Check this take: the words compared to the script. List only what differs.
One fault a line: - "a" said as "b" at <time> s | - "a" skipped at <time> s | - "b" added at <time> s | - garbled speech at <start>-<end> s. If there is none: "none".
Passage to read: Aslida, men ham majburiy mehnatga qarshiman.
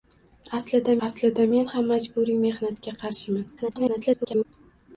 - "aslida" added at 1.1 s
- garbled speech at 3.6-4.5 s